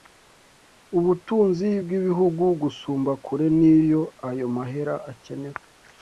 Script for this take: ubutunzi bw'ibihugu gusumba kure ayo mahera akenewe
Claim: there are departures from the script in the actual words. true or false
true